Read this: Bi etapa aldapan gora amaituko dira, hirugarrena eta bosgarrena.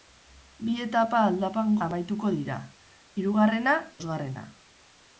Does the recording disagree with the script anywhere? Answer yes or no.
yes